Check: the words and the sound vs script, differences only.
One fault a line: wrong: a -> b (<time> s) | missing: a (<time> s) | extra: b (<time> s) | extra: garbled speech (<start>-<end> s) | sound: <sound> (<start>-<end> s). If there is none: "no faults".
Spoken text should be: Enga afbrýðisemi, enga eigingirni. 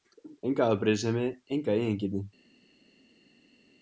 no faults